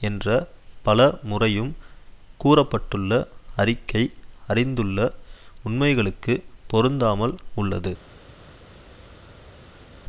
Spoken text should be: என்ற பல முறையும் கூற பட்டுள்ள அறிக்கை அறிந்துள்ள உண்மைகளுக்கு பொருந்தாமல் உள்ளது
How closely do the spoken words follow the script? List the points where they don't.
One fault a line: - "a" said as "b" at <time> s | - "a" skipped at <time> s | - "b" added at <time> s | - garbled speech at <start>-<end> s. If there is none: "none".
none